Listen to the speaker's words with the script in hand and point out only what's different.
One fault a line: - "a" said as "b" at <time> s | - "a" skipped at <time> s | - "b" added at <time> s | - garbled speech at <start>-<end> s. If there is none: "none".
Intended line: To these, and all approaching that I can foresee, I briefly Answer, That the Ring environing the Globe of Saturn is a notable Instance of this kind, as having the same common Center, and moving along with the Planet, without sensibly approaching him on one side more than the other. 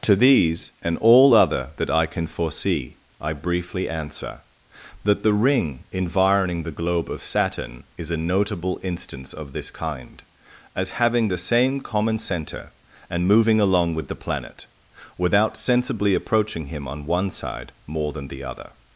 - "approaching" said as "other" at 1.4 s